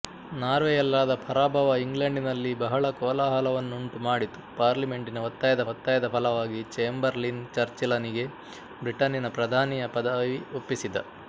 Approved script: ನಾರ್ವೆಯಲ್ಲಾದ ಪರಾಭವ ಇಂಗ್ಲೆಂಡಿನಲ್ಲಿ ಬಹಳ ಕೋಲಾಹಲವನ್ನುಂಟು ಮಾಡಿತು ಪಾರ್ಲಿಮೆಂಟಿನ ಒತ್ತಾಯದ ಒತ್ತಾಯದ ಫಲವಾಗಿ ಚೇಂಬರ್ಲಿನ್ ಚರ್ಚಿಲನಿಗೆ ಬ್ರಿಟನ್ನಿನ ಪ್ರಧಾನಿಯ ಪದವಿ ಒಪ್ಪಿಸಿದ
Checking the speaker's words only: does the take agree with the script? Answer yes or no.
yes